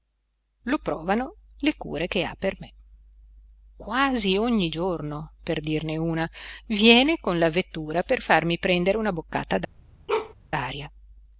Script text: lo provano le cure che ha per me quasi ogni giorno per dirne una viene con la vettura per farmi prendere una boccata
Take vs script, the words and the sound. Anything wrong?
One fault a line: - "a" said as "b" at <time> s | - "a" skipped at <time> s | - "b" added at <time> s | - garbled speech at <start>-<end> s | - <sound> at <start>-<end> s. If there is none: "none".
- bark at 10.1-10.3 s